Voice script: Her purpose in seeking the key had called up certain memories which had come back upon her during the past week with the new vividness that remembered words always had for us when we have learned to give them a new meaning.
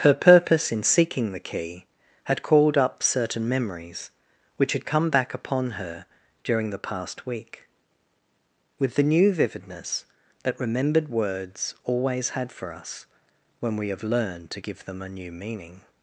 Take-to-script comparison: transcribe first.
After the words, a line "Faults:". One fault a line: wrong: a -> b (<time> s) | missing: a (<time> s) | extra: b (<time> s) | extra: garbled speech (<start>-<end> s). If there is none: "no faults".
Her purpose in seeking the key had called up certain memories which had come back upon her during the past week with the new vividness that remembered words always had for us when we have learned to give them a new meaning.
Faults:
no faults